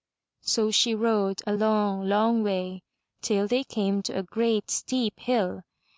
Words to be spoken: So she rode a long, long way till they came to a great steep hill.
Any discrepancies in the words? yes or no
no